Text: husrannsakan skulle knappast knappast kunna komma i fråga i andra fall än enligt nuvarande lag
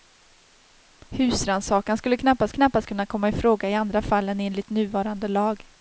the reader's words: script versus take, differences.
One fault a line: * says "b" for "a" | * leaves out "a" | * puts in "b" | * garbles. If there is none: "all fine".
all fine